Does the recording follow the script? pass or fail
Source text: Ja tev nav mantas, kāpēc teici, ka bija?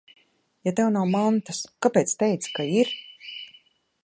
fail